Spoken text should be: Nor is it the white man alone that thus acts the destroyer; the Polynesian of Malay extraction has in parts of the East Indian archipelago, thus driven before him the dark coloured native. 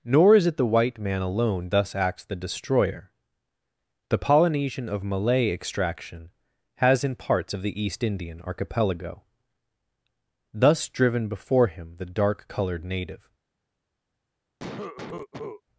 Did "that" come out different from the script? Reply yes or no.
yes